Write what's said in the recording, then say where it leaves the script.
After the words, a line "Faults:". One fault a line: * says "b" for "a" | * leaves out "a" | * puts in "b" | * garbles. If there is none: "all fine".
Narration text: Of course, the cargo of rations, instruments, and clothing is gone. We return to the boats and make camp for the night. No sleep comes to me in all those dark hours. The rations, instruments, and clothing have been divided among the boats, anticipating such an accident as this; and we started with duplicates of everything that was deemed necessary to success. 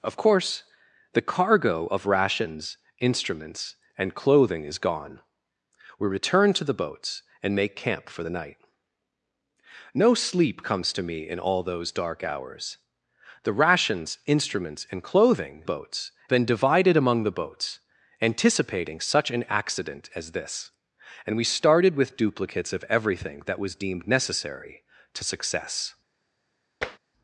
Of course, the cargo of rations, instruments, and clothing is gone. We return to the boats and make camp for the night. No sleep comes to me in all those dark hours. The rations, instruments, and clothing boats been divided among the boats, anticipating such an accident as this; and we started with duplicates of everything that was deemed necessary to success.
Faults:
* says "boats" for "have"